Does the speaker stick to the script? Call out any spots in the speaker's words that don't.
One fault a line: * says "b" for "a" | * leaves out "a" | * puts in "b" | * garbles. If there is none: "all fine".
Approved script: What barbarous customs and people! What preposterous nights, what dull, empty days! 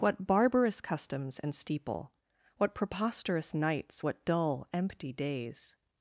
* says "steeple" for "people"